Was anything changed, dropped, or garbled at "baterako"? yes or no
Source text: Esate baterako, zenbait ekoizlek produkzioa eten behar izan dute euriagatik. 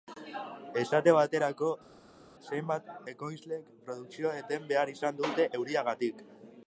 no